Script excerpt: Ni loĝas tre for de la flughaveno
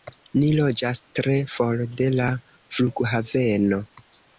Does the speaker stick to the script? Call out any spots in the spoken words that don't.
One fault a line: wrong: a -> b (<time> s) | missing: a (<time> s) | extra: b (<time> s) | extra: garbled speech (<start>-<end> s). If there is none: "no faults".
no faults